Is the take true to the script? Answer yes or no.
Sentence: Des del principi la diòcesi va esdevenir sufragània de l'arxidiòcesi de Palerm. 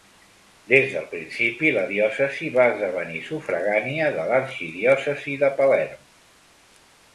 yes